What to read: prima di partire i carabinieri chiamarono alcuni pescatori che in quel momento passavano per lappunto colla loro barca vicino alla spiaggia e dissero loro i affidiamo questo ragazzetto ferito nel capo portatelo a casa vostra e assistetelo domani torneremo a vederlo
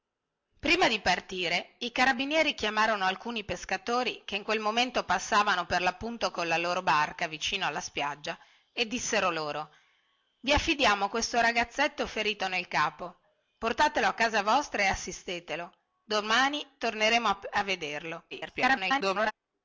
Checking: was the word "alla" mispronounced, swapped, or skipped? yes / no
no